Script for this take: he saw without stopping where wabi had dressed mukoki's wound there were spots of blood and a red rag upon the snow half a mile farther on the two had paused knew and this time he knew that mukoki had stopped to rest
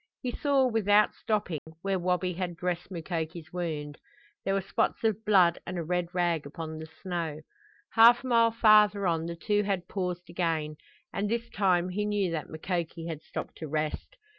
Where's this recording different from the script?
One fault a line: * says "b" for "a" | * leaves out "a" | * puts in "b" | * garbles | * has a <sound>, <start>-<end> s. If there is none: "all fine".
* has a dropout, 1.6-1.7 s
* says "again" for "knew"